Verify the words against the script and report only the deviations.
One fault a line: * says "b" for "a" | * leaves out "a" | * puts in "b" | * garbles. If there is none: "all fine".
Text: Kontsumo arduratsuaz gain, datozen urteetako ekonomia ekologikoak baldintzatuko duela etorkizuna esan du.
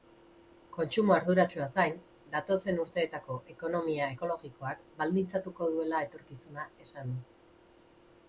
all fine